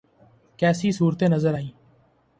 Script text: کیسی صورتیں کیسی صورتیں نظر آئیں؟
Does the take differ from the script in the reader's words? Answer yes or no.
yes